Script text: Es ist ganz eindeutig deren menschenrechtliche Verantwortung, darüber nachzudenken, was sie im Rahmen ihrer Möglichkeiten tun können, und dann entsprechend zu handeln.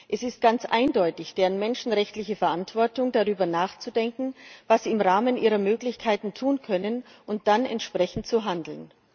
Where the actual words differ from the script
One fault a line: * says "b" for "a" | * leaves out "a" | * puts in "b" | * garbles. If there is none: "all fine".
all fine